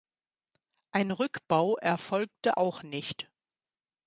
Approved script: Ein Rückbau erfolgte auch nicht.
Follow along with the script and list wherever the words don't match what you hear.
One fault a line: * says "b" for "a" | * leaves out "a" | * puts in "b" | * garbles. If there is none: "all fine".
all fine